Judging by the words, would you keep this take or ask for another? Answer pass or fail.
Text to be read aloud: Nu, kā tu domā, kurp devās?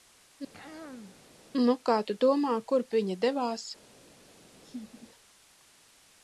fail